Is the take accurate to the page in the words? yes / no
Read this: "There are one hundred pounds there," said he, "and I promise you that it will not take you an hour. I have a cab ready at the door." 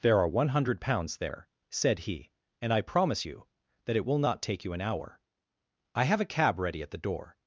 yes